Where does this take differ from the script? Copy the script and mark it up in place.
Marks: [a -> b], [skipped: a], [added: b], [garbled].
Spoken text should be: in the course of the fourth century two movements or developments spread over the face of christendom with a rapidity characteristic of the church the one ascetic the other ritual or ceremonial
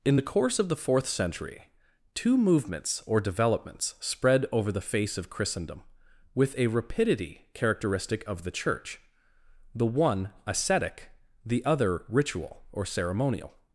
in the course of the fourth century two movements or developments spread over the face of christendom with a rapidity characteristic of the church the one ascetic the other ritual or ceremonial